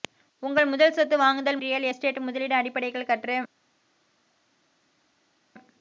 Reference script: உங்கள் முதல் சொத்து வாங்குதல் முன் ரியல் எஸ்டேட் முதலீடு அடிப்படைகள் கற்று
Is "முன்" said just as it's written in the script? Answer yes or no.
no